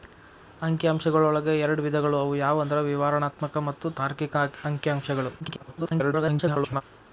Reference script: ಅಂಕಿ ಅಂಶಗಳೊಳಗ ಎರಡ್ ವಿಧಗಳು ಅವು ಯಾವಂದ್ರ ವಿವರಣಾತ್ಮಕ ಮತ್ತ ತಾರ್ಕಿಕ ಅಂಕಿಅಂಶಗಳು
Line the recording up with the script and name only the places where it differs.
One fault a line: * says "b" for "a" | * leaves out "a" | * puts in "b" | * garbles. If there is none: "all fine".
* garbles